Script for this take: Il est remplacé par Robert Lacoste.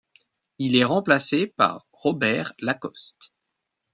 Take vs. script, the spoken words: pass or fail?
pass